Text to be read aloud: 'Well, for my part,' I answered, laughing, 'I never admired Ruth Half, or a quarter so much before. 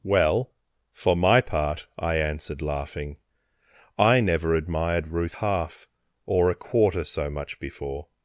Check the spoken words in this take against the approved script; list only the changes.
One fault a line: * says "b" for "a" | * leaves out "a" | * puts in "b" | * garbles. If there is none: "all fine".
all fine